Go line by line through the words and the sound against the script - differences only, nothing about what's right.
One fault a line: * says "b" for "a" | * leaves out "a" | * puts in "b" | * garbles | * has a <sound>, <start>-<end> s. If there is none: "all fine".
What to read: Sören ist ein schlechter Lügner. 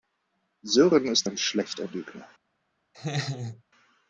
* has a laugh, 2.9-3.6 s